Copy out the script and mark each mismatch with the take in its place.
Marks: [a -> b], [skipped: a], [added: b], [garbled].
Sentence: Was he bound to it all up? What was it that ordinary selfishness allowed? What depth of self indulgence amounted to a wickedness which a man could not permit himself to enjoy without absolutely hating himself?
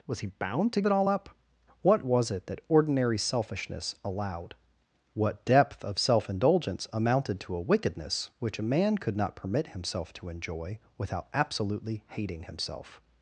Was he bound to it all up? What was it that ordinary selfishness allowed? What depth of self indulgence amounted to a wickedness which a man could not permit himself to enjoy without absolutely hating himself?